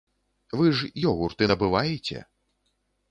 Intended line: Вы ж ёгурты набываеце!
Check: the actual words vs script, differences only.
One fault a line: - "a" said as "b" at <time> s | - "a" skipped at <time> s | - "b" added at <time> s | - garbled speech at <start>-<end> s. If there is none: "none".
none